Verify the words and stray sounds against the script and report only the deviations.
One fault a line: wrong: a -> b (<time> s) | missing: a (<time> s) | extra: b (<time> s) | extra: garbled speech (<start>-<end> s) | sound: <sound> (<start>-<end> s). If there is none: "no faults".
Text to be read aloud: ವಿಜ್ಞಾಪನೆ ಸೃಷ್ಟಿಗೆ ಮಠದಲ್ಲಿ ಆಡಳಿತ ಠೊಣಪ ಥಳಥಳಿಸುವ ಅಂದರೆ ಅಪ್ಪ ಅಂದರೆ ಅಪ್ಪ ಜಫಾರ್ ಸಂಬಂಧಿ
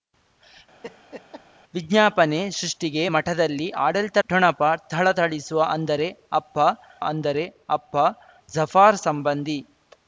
sound: laugh (0.8-1.4 s)